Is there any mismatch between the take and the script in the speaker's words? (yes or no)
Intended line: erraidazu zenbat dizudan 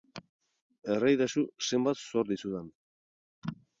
yes